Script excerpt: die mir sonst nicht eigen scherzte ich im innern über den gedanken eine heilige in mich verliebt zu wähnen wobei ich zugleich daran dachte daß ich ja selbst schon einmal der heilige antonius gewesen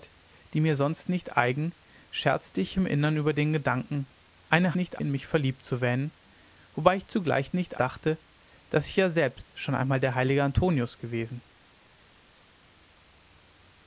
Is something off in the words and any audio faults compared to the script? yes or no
yes